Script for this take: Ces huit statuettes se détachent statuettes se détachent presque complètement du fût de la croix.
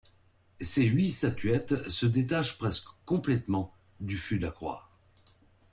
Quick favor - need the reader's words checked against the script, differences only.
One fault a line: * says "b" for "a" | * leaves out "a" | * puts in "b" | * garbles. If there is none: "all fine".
* leaves out "statuettes se détachent"